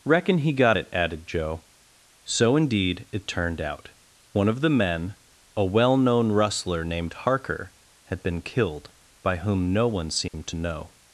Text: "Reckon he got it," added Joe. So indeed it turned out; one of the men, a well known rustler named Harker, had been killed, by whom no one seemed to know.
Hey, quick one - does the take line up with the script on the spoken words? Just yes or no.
yes